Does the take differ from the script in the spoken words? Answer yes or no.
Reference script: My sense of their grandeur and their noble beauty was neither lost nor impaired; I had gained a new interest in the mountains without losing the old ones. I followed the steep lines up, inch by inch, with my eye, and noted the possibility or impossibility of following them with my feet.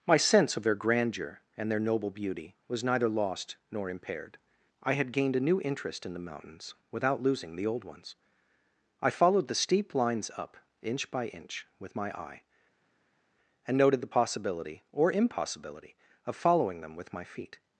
no